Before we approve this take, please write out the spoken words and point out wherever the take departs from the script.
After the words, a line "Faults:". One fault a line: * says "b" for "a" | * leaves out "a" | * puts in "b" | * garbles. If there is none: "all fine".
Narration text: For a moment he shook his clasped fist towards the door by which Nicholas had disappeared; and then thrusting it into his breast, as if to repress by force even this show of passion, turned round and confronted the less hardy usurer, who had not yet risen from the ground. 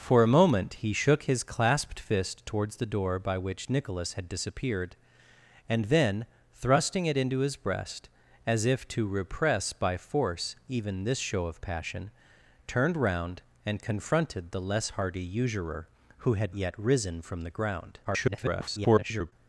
For a moment he shook his clasped fist towards the door by which Nicholas had disappeared; and then thrusting it into his breast, as if to repress by force even this show of passion, turned round and confronted the less hardy usurer, who had yet risen from the ground. [garbled]
Faults:
* leaves out "not"
* garbles